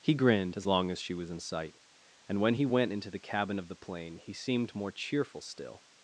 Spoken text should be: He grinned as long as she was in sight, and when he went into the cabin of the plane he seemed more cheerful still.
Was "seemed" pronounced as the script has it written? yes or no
yes